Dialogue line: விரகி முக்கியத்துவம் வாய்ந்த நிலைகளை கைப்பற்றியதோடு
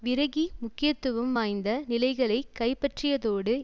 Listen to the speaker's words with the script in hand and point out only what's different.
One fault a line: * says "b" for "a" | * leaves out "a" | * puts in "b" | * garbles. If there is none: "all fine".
all fine